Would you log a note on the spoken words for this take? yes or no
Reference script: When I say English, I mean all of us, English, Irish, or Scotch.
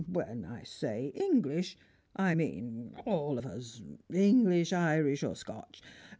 no